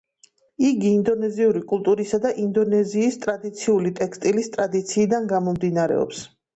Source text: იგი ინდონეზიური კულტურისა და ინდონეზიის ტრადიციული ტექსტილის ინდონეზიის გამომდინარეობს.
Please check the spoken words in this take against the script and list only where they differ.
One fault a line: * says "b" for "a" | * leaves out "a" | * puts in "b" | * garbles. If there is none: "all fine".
* says "ტრადიციიდან" for "ინდონეზიის"